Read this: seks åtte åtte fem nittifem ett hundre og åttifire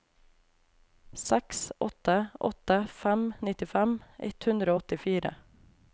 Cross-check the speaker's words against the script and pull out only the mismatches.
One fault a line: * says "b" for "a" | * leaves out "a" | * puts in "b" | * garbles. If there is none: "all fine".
all fine